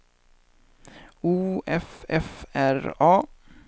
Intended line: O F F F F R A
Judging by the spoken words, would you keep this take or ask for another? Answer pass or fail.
fail